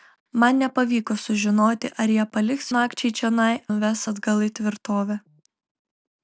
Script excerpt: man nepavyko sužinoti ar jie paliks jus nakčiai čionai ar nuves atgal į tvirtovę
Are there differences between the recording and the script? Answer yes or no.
yes